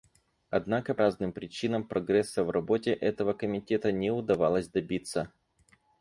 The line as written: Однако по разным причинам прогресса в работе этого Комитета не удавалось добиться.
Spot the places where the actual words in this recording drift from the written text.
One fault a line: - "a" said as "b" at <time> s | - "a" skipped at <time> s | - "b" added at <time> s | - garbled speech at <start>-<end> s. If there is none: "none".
- "по" skipped at 0.9 s